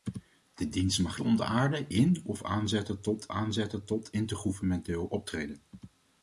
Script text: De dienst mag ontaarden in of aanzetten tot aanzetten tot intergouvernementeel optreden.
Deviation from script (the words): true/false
false